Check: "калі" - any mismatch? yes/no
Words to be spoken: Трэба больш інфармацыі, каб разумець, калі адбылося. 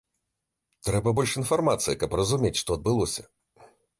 yes